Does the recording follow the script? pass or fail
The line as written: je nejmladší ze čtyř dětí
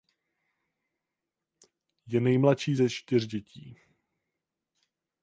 pass